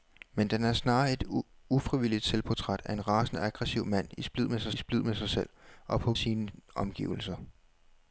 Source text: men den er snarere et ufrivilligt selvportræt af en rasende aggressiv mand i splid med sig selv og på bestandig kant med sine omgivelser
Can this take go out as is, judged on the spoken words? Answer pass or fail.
fail